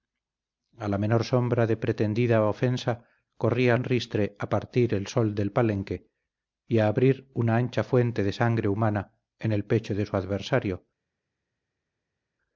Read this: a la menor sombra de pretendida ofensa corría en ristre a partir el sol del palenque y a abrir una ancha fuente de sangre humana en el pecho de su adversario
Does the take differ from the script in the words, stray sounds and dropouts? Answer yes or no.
no